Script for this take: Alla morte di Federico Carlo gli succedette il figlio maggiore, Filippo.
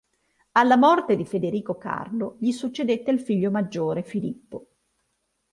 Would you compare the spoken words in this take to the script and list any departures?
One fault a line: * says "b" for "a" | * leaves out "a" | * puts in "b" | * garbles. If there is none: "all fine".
all fine